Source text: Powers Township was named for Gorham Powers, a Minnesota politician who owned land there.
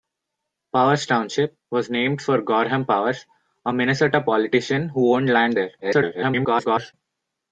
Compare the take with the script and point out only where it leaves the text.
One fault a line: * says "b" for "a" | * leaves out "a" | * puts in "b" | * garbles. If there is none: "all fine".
* garbles